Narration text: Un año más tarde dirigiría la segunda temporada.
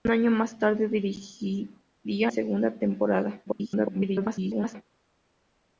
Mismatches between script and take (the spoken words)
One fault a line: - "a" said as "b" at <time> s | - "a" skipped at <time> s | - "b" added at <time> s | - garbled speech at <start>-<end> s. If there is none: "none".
- "la" skipped at 2.3 s
- garbled speech at 3.4-4.8 s